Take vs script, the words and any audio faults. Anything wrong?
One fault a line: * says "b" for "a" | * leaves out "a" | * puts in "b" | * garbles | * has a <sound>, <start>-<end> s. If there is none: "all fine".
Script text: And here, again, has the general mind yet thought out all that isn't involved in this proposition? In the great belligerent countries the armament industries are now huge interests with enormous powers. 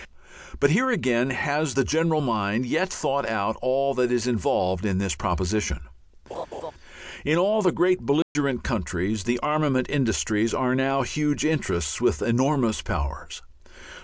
* says "But" for "And"
* says "is" for "isn't"
* has a laugh, 6.3-6.7 s
* puts in "all"
* has a dropout, 8.2-8.4 s